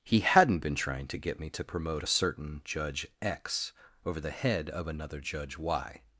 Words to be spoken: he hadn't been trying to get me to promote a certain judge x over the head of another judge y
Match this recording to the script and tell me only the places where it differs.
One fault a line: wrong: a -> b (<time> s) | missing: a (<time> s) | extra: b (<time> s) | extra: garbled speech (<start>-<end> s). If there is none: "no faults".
no faults